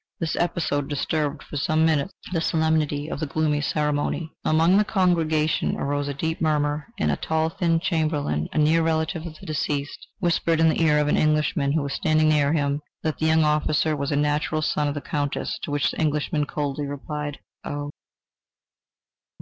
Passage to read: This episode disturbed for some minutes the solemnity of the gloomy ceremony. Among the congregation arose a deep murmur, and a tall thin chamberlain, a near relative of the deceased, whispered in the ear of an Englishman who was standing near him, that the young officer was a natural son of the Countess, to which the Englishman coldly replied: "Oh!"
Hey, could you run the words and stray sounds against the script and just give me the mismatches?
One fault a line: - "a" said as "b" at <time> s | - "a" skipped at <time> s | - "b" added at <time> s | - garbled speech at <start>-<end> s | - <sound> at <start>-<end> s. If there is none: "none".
none